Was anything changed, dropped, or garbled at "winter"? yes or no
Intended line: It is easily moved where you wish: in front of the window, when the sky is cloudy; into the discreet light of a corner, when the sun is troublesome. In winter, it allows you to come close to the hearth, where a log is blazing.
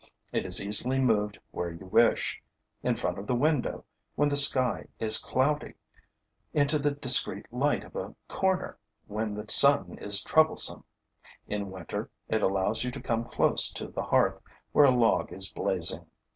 no